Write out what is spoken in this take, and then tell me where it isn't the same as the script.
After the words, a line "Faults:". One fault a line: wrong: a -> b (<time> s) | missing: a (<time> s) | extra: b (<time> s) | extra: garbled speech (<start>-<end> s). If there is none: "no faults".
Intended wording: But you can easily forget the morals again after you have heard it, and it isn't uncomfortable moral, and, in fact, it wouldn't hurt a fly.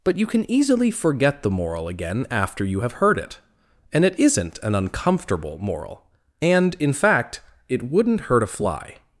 But you can easily forget the moral again after you have heard it, and it isn't an uncomfortable moral, and, in fact, it wouldn't hurt a fly.
Faults:
wrong: morals -> moral (1.5 s)
extra: an (4.6 s)